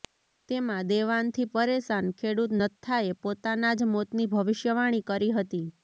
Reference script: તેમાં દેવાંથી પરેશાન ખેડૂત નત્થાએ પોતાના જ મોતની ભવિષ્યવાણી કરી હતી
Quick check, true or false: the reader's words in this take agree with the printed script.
true